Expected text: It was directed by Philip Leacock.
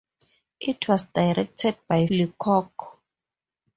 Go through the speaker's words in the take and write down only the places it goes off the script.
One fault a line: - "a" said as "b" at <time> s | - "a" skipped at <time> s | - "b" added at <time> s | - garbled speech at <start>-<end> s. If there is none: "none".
- "Philip" skipped at 2.1 s